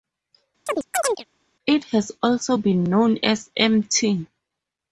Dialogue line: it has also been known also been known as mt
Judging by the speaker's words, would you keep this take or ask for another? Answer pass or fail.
fail